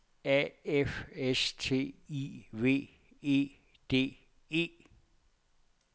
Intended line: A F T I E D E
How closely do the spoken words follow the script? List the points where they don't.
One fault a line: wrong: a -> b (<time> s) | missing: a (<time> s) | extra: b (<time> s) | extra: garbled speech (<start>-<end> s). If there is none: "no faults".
extra: S (1.1 s)
extra: V (2.5 s)